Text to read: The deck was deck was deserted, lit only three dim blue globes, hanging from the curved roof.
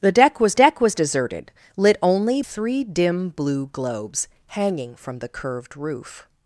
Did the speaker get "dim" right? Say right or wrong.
right